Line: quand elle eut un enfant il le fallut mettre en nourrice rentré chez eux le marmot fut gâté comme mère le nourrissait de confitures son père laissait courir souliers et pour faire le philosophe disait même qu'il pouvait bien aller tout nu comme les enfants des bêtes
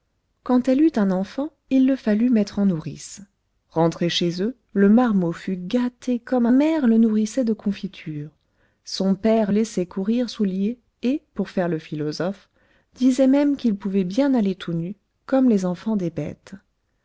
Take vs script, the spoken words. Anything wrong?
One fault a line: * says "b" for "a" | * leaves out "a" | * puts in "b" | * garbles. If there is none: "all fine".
all fine